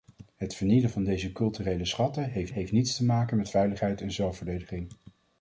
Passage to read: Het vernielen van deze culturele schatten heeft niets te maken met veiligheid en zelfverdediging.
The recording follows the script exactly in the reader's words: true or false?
false